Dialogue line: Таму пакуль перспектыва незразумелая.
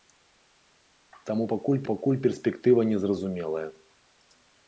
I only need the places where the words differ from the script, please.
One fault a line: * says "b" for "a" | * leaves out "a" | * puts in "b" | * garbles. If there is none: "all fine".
* puts in "пакуль"